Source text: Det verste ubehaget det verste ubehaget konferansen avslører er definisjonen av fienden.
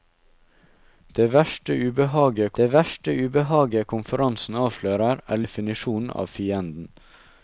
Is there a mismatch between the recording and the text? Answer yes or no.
no